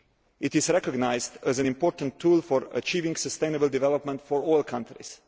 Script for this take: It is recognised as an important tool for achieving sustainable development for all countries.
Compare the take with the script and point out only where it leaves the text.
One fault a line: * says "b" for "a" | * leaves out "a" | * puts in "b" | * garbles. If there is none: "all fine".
all fine